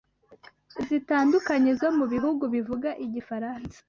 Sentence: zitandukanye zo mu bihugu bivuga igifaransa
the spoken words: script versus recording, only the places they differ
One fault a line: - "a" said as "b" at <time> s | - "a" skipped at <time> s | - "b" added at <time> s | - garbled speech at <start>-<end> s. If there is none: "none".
none